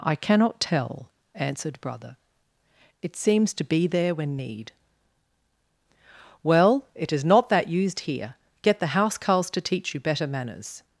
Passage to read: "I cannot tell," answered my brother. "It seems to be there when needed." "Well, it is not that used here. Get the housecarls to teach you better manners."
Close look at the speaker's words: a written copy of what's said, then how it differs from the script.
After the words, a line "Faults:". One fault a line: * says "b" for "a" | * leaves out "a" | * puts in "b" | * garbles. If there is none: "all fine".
"I cannot tell," answered brother. "It seems to be there when need." "Well, it is not that used here. Get the housecarls to teach you better manners."
Faults:
* leaves out "my"
* says "need" for "needed"